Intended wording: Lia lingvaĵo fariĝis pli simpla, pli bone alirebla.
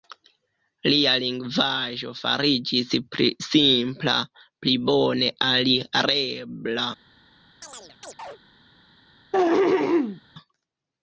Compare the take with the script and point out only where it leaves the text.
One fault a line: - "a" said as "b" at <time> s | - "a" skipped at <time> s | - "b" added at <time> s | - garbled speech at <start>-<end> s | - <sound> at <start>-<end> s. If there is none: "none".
- chirp at 7.6-8.4 s
- throat clearing at 9.3-10.2 s